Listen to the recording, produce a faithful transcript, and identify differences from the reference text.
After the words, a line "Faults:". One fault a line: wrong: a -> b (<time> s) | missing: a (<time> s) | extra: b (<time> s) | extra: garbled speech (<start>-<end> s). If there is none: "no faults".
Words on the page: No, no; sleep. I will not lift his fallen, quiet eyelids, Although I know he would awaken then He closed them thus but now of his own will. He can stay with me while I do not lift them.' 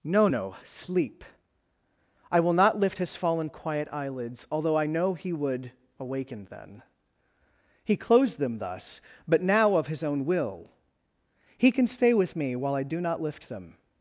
No, no; sleep. I will not lift his fallen, quiet eyelids, Although I know he would awaken then He closed them thus but now of his own will. He can stay with me while I do not lift them.'
Faults:
no faults